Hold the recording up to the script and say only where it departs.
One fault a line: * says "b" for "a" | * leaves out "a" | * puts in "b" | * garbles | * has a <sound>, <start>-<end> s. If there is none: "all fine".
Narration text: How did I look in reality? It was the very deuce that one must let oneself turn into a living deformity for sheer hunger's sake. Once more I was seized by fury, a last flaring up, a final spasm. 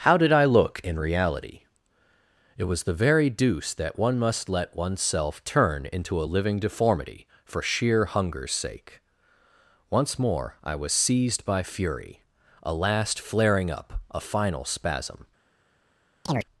* has a chirp, 16.3-16.5 s